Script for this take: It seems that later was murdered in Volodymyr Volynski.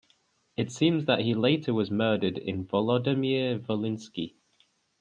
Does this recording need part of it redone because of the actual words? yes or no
yes